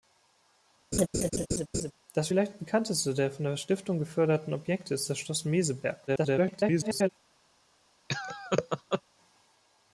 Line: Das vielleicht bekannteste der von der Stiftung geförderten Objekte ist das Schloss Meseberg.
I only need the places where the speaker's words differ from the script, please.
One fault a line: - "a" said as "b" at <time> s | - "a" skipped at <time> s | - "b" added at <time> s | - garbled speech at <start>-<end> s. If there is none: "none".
- garbled speech at 6.1-7.1 s